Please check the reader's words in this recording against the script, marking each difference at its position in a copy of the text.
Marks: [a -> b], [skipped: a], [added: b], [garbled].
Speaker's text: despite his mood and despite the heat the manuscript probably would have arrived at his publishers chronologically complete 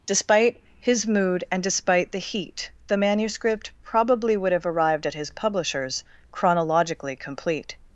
despite his mood and despite the heat the manuscript probably would have arrived at his publishers chronologically complete